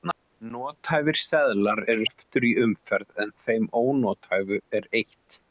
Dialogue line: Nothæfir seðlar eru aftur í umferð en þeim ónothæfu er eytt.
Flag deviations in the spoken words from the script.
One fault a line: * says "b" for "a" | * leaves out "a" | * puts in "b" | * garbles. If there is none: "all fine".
all fine